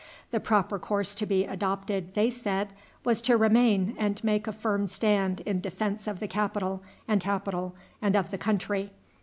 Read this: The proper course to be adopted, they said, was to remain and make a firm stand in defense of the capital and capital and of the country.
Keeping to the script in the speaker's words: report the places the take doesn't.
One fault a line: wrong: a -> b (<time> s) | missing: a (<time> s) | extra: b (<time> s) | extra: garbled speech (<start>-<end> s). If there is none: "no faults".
no faults